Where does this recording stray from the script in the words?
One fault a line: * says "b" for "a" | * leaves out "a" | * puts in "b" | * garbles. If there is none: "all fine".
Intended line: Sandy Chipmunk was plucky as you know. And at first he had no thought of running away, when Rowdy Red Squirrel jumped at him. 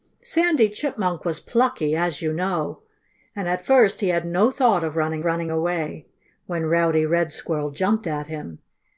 * puts in "running"